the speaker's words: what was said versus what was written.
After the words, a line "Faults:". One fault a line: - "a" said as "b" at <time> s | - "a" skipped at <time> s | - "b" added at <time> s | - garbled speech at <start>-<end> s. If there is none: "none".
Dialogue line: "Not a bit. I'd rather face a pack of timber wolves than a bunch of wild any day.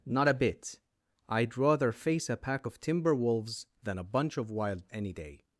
"Not a bit. I'd rather face a pack of timber wolves than a bunch of wild any day.
Faults:
none